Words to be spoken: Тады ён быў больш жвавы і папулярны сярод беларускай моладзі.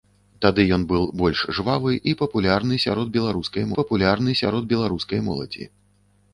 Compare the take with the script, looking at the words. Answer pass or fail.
fail